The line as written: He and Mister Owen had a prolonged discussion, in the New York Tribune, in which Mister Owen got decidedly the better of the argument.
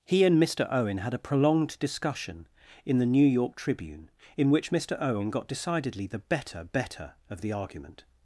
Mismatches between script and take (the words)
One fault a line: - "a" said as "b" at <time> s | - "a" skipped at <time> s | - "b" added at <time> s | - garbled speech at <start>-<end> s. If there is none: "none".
- "better" added at 6.6 s